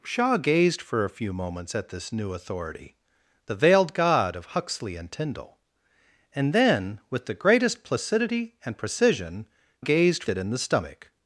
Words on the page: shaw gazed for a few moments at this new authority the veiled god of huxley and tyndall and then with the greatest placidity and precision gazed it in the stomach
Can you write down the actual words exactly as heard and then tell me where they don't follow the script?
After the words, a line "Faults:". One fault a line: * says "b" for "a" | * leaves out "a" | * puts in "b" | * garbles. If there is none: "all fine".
shaw gazed for a few moments at this new authority the veiled god of huxley and tyndall and then with the greatest placidity and precision gazed it in the stomach
Faults:
all fine